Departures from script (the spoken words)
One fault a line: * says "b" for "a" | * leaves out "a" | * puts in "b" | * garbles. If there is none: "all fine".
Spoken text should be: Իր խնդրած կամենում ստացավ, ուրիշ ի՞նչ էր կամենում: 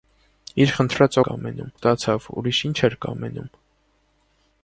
all fine